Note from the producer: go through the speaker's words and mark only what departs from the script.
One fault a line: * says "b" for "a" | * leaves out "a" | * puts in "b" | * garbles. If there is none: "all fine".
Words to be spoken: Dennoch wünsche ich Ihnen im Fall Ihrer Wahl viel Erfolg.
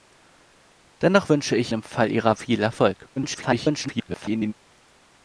* leaves out "Ihnen"
* leaves out "Wahl"
* garbles